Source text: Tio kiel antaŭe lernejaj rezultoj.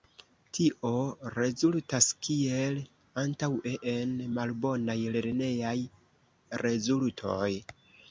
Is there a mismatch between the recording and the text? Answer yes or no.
yes